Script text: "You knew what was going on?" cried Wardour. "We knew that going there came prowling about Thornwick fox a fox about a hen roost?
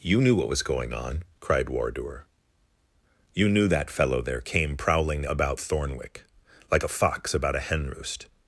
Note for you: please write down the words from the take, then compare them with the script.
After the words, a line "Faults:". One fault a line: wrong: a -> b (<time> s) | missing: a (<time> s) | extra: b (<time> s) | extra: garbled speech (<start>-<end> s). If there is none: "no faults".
"You knew what was going on?" cried Wardour. "You knew that fellow there came prowling about Thornwick like a fox about a hen roost?
Faults:
wrong: We -> You (3.4 s)
wrong: going -> fellow (3.9 s)
wrong: fox -> like (6.7 s)